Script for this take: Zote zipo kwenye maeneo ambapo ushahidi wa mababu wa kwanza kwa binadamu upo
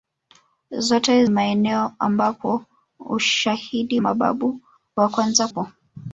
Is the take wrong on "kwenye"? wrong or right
wrong